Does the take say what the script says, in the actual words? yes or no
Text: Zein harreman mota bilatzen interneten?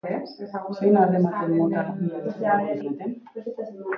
yes